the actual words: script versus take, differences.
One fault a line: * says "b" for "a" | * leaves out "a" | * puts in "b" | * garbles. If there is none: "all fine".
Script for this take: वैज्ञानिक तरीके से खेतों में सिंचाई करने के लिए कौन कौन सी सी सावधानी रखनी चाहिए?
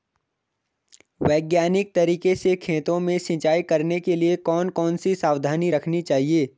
* leaves out "सी"